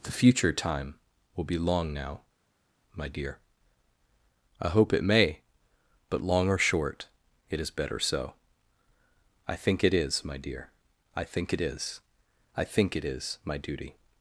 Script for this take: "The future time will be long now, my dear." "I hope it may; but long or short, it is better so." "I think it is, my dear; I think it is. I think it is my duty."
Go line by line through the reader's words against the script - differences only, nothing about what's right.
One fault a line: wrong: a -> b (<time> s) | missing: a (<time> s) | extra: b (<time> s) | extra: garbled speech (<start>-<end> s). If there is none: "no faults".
no faults